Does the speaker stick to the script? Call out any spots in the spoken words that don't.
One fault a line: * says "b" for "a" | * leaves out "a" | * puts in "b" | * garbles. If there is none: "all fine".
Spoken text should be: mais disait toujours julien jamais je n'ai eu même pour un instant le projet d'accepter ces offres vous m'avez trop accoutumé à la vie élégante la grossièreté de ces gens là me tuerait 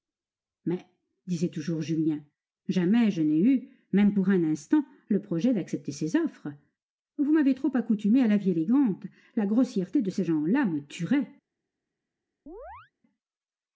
all fine